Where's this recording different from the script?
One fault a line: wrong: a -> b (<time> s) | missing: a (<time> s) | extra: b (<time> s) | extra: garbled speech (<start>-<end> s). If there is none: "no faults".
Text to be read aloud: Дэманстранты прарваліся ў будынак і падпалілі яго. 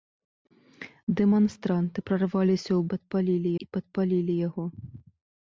wrong: будынак -> падпалілі (2.9 s)